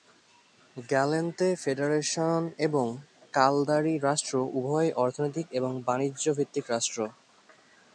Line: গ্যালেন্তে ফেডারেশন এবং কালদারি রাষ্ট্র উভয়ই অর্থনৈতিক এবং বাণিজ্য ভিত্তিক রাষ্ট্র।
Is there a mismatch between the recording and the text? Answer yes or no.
no